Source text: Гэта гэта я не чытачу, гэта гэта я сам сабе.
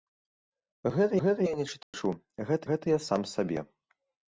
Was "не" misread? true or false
false